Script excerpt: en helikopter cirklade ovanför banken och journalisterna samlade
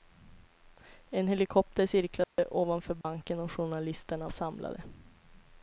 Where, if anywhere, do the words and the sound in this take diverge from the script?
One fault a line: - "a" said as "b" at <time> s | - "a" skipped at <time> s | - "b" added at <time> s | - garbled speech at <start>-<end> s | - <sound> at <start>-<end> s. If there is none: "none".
- dropout at 2.2-2.4 s
- dropout at 3.0-3.0 s